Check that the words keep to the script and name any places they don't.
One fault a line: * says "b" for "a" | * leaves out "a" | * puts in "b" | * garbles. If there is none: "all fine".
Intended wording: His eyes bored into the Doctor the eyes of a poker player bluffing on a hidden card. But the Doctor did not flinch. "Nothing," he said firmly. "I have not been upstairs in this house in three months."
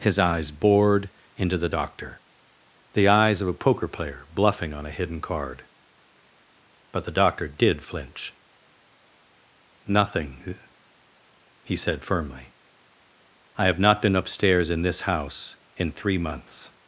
* leaves out "not"